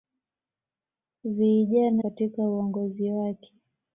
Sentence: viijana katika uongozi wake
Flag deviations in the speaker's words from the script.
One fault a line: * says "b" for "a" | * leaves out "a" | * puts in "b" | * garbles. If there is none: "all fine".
all fine